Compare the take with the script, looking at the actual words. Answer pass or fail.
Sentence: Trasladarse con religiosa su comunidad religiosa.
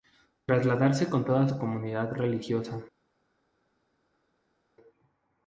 fail